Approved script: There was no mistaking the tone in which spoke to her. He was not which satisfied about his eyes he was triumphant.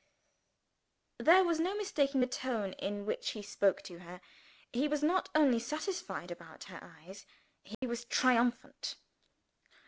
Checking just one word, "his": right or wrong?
wrong